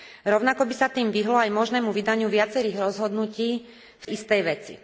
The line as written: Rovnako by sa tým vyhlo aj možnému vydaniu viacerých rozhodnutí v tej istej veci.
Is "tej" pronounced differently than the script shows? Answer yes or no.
yes